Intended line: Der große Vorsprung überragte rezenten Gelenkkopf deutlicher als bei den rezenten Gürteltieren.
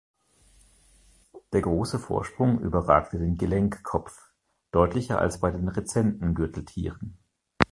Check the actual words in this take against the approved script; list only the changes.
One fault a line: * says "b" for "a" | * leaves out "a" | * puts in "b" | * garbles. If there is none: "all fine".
* says "den" for "rezenten"